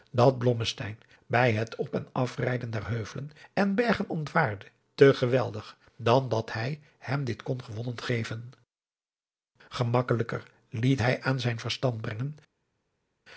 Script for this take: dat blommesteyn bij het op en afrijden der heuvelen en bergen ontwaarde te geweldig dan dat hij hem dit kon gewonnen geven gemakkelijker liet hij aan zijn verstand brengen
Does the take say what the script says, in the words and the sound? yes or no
yes